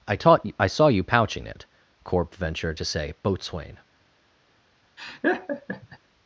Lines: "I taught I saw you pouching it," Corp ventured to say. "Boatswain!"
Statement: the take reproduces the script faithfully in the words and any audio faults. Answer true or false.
false